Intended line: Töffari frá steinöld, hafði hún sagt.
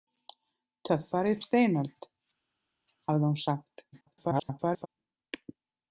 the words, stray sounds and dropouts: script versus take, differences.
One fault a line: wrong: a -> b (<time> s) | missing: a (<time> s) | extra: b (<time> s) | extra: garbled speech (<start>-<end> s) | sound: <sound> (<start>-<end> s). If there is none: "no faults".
missing: frá (1.3 s)
extra: garbled speech (3.9-4.9 s)